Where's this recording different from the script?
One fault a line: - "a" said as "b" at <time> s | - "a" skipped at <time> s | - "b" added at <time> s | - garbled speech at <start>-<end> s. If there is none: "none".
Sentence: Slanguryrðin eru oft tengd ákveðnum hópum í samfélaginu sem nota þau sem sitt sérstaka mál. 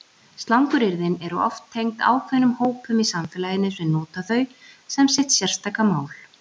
none